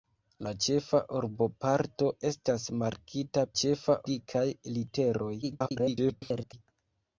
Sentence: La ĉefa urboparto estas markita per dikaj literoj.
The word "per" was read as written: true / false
false